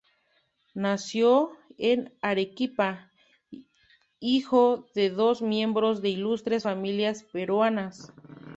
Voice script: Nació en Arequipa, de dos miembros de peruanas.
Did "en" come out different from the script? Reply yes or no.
no